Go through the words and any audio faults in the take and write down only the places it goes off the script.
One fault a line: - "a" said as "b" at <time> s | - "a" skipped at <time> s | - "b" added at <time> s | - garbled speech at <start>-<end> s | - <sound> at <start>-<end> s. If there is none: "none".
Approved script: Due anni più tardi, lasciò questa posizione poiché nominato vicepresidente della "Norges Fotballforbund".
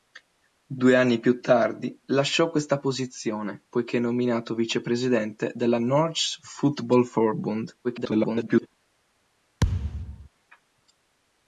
- garbled speech at 7.8-8.7 s
- thud at 9.6-10.3 s